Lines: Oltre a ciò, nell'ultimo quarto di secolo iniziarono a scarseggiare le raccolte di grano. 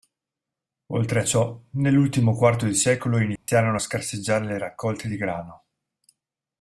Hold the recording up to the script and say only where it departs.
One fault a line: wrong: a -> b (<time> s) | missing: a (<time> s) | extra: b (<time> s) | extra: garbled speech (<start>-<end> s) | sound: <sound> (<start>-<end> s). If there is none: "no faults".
sound: dropout (3.4-3.5 s)